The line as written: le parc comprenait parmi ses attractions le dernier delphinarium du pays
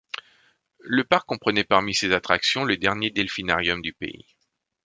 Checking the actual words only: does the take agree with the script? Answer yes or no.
yes